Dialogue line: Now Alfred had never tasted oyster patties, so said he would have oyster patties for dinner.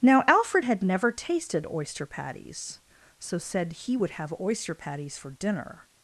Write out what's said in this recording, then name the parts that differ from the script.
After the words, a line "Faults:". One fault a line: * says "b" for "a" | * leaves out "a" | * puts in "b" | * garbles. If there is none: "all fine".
Now Alfred had never tasted oyster patties, so said he would have oyster patties for dinner.
Faults:
all fine